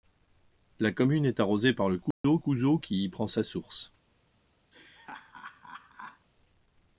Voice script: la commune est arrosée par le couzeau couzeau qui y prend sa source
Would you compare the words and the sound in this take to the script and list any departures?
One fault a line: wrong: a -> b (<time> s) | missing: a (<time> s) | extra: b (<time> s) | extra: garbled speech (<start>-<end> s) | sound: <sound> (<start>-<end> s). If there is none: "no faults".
sound: dropout (2.1-2.2 s)
sound: laugh (4.7-6.3 s)